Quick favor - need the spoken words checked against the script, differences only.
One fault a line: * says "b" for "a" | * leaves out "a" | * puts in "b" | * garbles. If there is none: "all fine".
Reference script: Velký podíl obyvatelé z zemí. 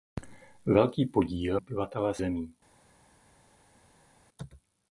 all fine